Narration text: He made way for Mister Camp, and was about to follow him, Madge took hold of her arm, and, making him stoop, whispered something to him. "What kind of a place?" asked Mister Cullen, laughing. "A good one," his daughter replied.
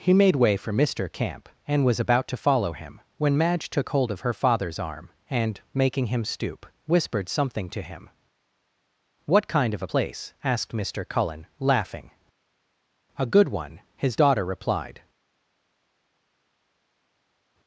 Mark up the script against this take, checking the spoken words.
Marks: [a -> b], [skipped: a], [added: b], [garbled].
He made way for Mister Camp, and was about to follow him, [added: when] Madge took hold of her [added: father's] arm, and, making him stoop, whispered something to him. "What kind of a place?" asked Mister Cullen, laughing. "A good one," his daughter replied.